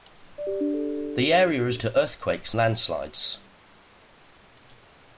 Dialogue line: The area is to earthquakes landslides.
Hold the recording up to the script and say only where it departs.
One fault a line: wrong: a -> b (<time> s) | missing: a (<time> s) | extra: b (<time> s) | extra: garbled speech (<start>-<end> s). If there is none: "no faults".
no faults